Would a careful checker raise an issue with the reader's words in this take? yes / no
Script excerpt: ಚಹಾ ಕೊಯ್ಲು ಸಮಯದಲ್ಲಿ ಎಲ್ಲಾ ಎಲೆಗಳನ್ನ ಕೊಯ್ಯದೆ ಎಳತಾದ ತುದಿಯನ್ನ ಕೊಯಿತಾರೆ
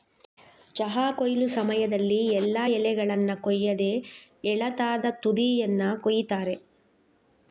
no